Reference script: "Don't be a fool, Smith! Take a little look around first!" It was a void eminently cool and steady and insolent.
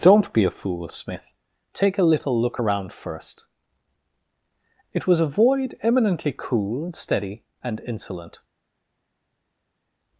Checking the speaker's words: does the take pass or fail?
pass